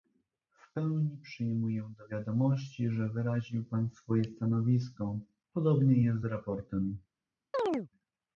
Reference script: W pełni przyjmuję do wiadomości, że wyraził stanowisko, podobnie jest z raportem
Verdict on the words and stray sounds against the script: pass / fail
fail